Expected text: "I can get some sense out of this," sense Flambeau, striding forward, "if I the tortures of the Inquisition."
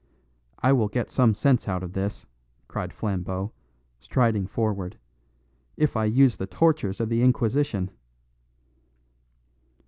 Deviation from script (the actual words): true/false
true